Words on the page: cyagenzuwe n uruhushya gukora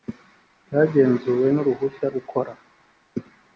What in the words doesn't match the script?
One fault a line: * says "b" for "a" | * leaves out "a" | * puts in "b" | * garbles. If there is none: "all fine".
all fine